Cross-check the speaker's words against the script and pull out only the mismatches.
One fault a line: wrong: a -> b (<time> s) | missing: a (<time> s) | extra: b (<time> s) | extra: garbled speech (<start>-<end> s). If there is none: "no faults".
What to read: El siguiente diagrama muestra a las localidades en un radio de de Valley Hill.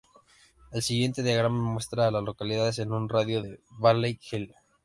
no faults